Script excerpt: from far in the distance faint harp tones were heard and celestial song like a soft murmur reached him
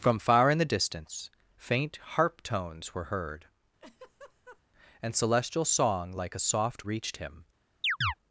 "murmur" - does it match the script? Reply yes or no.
no